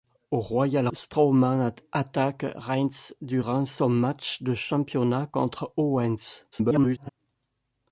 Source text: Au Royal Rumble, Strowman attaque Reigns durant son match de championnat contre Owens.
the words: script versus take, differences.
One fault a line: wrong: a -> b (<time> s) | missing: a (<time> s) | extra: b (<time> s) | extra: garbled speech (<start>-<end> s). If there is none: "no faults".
missing: Rumble (0.9 s)
extra: garbled speech (6.5-7.1 s)